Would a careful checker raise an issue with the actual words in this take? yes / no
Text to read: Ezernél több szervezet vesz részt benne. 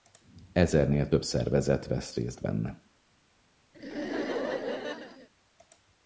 no